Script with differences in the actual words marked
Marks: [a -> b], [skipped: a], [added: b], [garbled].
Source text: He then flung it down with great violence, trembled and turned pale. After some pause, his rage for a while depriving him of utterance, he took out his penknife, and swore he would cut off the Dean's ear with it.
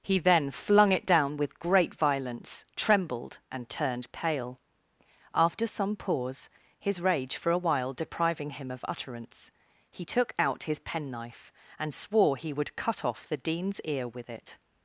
He then flung it down with great violence, trembled and turned pale. After some pause, his rage for a while depriving him of utterance, he took out his penknife, and swore he would cut off the Dean's ear with it.